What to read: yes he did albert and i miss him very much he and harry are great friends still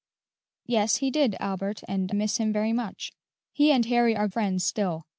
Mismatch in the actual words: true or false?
true